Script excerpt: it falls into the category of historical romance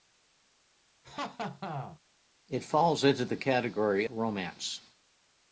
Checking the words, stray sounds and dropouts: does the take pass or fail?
fail